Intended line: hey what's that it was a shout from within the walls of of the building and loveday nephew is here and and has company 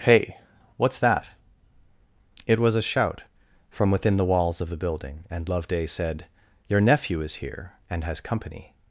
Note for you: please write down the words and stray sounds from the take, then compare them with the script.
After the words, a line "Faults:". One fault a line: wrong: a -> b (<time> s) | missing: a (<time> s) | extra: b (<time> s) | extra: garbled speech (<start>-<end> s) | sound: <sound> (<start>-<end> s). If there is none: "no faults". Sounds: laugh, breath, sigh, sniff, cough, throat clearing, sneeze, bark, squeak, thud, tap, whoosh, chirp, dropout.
hey what's that it was a shout from within the walls of the building and loveday said your nephew is here and has company
Faults:
missing: of (4.7 s)
extra: said your (5.8 s)
missing: and (8.0 s)